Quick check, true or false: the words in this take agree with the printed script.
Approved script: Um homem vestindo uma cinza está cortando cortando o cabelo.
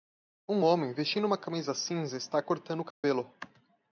false